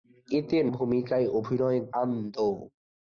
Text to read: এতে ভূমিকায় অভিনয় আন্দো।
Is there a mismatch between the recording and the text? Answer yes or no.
no